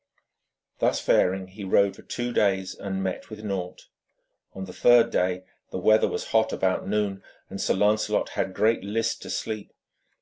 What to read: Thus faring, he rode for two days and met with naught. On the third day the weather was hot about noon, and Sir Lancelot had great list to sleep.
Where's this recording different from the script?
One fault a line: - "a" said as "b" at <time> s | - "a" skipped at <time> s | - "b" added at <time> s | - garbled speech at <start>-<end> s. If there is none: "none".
none